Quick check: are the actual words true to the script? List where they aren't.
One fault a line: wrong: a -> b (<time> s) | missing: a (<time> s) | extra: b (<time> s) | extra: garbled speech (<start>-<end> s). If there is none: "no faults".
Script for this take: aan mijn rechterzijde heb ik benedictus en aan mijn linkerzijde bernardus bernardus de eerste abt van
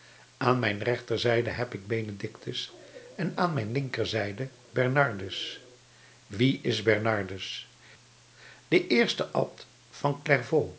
extra: wie is (6.3 s)